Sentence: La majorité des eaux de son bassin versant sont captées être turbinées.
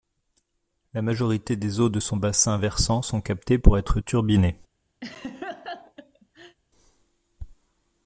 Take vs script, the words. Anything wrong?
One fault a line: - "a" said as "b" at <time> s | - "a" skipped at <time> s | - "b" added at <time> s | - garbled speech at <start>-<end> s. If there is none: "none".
- "pour" added at 3.6 s